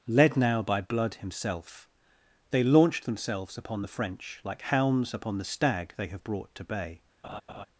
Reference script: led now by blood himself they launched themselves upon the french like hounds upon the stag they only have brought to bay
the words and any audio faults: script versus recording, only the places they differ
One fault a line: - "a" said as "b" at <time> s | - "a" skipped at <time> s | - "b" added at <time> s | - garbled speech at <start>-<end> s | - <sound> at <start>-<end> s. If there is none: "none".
- "only" skipped at 6.1 s
- laugh at 7.2-7.7 s